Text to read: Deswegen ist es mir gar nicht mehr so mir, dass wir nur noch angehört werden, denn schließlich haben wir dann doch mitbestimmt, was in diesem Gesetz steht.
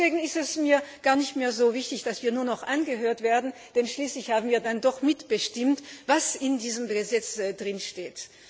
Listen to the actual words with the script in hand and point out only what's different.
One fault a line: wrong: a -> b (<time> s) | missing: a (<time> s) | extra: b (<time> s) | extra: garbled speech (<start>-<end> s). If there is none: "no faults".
wrong: mir -> wichtig (1.7 s)